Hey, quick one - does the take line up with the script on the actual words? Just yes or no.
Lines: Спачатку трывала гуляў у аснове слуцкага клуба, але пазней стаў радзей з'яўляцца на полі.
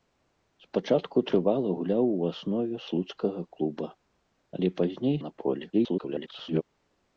no